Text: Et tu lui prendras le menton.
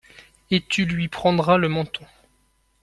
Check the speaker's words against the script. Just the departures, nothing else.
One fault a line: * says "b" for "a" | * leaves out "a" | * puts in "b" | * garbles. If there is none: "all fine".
all fine